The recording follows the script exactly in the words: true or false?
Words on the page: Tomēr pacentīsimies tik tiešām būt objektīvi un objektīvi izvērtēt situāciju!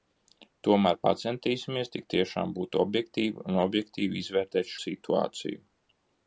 true